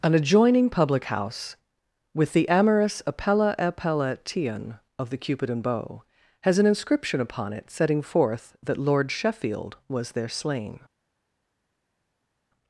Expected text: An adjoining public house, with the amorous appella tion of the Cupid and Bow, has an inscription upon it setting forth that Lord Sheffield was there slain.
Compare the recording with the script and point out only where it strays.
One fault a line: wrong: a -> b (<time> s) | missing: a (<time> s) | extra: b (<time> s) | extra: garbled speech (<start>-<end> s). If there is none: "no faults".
extra: appella (3.6 s)